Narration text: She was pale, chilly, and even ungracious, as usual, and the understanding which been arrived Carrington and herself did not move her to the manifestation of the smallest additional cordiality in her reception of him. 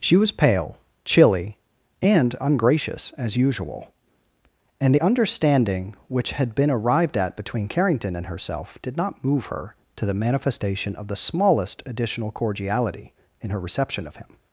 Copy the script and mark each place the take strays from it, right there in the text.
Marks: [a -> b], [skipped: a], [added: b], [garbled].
She was pale, chilly, and [skipped: even] ungracious, as usual, and the understanding which [added: had] been arrived [added: at between] Carrington and herself did not move her to the manifestation of the smallest additional cordiality in her reception of him.